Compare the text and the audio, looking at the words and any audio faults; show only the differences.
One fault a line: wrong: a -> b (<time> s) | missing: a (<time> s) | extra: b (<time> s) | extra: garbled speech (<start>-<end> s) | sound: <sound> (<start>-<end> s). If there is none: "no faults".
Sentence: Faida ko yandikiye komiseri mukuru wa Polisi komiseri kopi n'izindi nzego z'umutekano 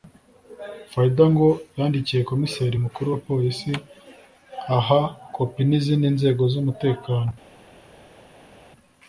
wrong: ko -> ngo (1.3 s)
wrong: komiseri -> aha (4.8 s)